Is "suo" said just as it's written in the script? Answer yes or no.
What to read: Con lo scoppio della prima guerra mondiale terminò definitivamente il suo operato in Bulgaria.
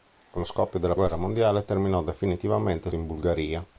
no